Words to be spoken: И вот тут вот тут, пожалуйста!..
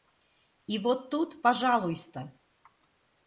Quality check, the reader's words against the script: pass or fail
fail